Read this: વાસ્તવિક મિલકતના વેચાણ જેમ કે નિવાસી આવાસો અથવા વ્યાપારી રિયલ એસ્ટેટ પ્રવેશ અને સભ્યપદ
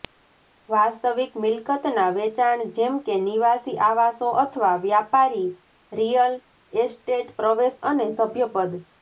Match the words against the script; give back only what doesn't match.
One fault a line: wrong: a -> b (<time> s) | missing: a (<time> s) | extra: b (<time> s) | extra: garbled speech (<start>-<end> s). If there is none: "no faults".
no faults